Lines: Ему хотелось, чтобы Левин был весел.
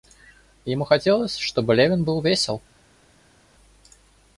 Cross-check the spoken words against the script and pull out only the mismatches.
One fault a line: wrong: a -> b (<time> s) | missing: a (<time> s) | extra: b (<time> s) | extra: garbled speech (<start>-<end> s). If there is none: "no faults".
no faults